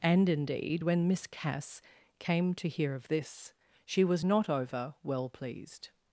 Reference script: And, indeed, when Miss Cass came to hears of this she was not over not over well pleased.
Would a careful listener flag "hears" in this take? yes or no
yes